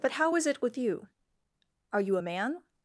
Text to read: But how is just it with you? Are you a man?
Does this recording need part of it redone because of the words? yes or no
yes